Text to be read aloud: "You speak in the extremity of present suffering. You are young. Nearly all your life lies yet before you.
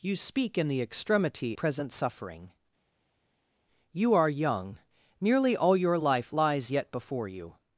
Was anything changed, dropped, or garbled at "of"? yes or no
yes